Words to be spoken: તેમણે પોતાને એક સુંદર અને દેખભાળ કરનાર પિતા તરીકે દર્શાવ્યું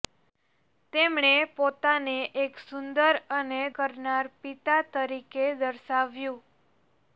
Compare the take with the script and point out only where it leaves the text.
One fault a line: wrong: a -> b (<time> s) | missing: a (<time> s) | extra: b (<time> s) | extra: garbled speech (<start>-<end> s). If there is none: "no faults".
missing: દેખભાળ (3.6 s)